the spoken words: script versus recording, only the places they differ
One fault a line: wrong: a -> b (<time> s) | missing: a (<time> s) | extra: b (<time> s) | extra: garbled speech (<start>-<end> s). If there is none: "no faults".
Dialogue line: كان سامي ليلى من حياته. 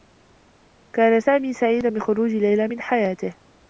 extra: سعيدا بخروج (1.5 s)